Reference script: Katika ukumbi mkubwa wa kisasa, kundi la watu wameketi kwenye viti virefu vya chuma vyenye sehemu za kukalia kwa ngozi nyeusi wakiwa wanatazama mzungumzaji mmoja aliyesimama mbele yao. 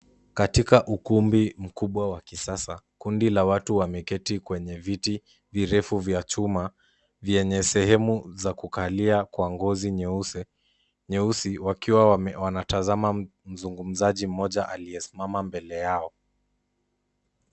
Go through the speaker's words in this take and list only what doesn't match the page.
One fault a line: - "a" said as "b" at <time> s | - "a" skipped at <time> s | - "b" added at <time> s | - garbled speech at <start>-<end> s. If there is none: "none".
none